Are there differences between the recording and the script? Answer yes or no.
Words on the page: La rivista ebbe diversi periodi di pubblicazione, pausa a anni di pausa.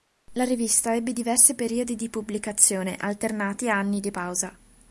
yes